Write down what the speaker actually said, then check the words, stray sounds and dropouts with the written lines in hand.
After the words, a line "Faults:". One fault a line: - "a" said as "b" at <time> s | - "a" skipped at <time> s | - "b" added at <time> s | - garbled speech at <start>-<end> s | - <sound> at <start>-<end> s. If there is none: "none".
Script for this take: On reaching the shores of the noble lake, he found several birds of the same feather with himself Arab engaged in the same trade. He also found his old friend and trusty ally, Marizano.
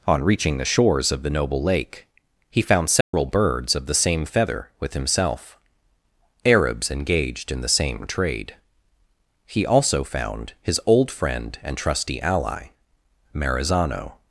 On reaching the shores of the noble lake, he found several birds of the same feather with himself Arabs engaged in the same trade. He also found his old friend and trusty ally, Marizano.
Faults:
- dropout at 3.0-3.1 s
- "Arab" said as "Arabs" at 6.4 s